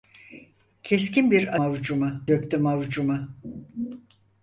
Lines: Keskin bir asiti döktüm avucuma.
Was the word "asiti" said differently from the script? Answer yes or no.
yes